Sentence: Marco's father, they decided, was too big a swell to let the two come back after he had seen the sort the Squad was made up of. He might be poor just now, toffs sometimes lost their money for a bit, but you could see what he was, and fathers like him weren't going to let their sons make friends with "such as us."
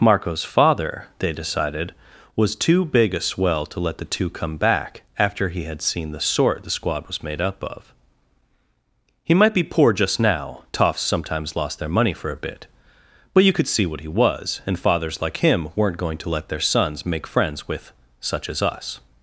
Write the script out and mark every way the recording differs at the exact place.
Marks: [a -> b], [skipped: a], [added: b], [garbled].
Marco's father, they decided, was too big a swell to let the two come back after he had seen the sort the Squad was made up of. He might be poor just now, toffs sometimes lost their money for a bit, but you could see what he was, and fathers like him weren't going to let their sons make friends with "such as us."